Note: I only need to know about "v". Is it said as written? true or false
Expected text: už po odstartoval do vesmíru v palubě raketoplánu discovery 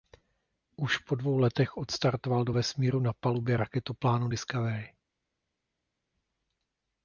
false